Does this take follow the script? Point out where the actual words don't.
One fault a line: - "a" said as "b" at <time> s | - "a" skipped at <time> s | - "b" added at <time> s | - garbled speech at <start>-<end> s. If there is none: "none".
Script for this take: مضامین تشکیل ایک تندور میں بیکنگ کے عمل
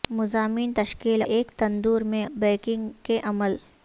none